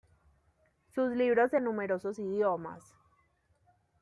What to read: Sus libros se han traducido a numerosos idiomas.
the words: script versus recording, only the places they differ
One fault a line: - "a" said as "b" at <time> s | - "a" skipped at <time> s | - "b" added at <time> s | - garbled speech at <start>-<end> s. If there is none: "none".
- "han traducido" skipped at 1.6 s